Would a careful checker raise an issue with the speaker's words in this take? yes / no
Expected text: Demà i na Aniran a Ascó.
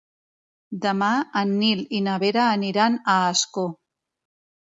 yes